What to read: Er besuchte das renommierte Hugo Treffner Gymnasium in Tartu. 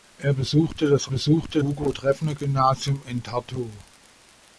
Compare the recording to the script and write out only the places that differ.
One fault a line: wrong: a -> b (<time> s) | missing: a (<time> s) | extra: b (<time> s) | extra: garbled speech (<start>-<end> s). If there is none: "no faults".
wrong: renommierte -> besuchte (1.1 s)